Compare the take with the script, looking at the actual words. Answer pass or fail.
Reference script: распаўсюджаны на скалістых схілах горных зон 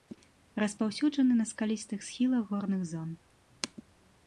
pass